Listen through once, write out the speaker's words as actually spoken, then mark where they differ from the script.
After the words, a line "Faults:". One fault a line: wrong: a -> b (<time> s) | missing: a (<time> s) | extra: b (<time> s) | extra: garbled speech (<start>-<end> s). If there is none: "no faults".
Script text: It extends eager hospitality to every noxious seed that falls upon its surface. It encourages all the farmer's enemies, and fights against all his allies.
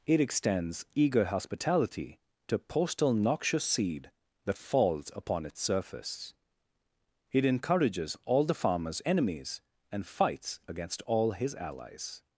It extends eager hospitality to postal noxious seed that falls upon its surface. It encourages all the farmer's enemies, and fights against all his allies.
Faults:
wrong: every -> postal (2.6 s)